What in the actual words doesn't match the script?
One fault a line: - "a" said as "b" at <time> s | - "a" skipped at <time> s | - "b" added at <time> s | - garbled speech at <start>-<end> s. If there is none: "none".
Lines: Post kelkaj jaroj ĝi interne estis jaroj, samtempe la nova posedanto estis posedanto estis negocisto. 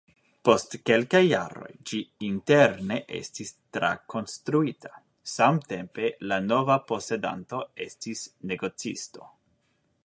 - "jaroj" said as "trakonstruita" at 3.8 s
- "posedanto estis" skipped at 8.2 s